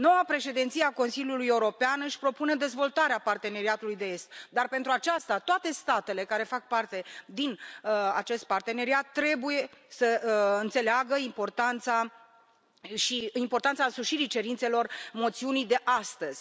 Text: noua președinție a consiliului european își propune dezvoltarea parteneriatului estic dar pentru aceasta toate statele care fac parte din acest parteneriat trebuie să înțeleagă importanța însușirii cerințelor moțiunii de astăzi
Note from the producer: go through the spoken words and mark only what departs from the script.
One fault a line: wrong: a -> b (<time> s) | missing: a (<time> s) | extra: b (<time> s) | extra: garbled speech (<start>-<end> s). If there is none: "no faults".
no faults